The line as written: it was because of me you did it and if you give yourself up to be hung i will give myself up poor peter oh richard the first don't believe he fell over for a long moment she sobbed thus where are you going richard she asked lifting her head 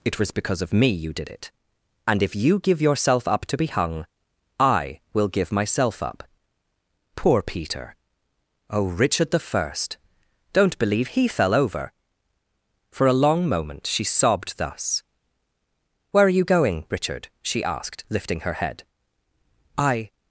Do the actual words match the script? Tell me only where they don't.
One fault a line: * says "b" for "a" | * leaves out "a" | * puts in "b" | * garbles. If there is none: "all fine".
* puts in "i"